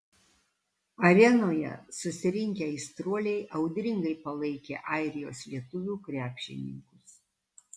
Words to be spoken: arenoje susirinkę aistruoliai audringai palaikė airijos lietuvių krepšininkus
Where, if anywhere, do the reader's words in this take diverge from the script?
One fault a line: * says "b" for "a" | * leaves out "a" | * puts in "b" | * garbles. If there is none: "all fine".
all fine